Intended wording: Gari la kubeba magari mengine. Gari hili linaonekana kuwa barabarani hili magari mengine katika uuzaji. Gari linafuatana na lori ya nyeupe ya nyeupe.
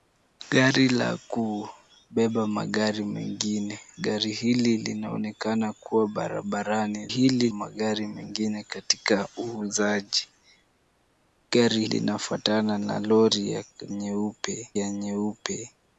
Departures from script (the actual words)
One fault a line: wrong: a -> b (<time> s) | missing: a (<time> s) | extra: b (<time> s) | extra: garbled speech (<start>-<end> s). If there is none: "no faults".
no faults